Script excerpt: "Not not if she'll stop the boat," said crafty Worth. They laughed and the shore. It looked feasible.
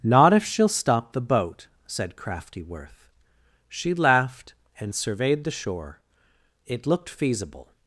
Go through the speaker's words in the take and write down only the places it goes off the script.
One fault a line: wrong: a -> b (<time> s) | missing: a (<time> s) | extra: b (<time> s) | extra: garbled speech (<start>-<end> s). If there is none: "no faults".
missing: not (0.3 s)
wrong: They -> She (3.7 s)
extra: surveyed (4.9 s)